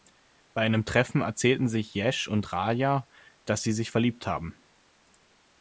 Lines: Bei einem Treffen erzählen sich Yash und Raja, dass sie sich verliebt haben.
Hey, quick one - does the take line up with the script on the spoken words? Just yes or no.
yes